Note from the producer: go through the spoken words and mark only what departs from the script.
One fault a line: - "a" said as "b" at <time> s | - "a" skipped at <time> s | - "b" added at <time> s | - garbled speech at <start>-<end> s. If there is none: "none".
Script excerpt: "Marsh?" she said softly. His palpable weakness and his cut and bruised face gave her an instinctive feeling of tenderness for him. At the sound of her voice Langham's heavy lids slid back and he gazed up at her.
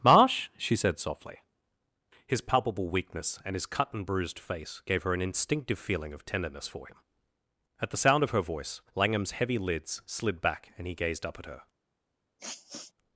none